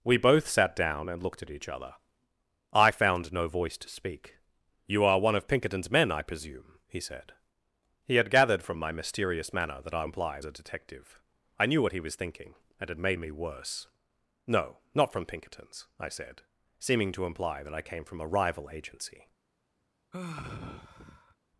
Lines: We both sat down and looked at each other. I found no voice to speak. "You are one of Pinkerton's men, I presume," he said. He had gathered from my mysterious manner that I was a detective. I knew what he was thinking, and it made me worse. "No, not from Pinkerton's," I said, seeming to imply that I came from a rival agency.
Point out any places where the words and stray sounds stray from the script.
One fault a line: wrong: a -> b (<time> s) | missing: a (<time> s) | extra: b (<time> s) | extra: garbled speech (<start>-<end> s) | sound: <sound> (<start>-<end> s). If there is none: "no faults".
wrong: was -> imply (10.0 s)
sound: sigh (20.1-21.4 s)